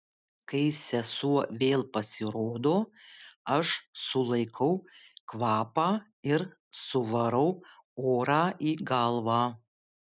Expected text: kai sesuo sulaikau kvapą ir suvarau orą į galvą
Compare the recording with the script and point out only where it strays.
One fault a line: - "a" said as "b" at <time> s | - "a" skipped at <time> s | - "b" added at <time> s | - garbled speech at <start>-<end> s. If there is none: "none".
- "vėl pasirodo aš" added at 1.6 s